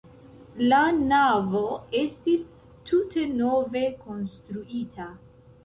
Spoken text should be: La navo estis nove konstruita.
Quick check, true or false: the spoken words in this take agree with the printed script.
false